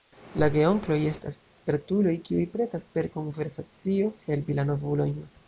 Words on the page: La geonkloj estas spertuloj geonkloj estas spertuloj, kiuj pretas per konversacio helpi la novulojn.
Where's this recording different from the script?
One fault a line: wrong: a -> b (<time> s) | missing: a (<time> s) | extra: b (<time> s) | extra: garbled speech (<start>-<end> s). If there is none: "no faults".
missing: geonkloj estas spertuloj (2.1 s)